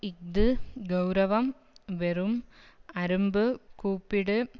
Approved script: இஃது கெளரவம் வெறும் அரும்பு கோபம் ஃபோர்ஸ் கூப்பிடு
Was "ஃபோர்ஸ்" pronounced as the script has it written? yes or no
no